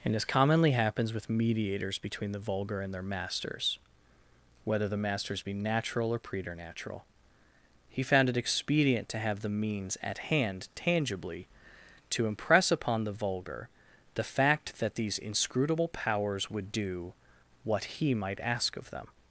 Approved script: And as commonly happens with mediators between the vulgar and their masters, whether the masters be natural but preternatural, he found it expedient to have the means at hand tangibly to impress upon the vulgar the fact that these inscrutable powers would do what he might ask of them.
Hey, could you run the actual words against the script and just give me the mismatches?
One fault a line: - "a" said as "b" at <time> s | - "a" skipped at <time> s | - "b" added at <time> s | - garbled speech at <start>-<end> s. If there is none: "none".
- "but" said as "or" at 6.1 s